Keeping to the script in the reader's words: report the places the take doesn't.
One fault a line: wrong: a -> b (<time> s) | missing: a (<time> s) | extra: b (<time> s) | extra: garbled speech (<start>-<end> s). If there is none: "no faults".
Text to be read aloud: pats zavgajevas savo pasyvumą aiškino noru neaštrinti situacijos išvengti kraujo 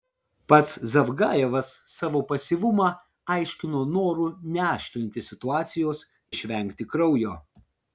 no faults